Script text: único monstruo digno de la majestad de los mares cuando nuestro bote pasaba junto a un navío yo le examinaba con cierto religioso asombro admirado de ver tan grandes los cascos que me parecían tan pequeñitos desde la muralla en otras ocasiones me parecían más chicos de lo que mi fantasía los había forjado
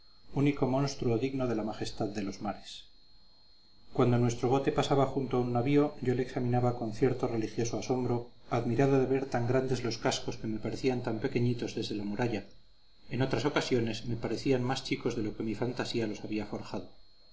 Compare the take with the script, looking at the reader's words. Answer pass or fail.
pass